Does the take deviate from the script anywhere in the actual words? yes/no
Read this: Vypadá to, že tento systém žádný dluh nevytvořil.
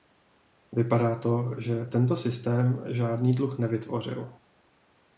no